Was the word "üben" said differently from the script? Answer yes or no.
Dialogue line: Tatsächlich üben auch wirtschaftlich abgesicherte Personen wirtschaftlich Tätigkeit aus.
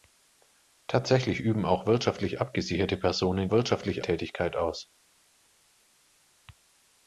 no